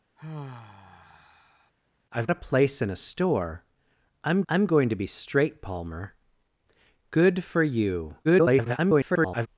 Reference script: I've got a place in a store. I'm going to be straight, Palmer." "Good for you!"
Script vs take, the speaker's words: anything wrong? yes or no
yes